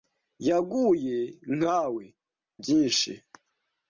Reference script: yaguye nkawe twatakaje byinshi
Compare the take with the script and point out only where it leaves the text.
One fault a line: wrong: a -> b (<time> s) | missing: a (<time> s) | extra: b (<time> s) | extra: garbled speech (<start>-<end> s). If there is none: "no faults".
missing: twatakaje (2.0 s)